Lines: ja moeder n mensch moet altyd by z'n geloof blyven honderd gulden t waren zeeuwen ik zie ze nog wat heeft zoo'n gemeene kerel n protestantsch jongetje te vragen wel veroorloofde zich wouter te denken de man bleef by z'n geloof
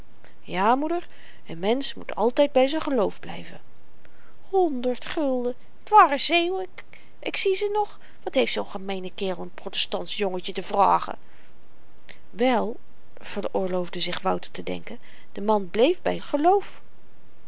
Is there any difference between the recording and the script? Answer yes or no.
yes